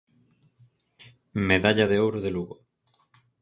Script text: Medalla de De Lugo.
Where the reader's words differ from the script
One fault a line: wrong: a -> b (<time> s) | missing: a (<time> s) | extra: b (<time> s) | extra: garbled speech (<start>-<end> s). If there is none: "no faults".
extra: Ouro (2.1 s)